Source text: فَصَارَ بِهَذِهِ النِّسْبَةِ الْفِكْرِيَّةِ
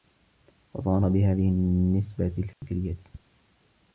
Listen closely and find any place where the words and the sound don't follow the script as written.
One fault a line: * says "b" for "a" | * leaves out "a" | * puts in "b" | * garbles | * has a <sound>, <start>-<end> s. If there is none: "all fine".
* has a dropout, 2.5-2.6 s